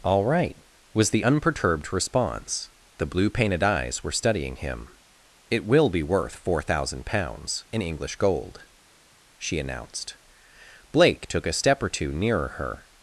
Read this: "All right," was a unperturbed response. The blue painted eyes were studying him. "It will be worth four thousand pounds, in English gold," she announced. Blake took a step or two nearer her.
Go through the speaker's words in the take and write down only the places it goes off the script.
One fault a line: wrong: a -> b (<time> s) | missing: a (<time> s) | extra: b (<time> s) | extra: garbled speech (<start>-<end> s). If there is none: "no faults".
wrong: a -> the (1.1 s)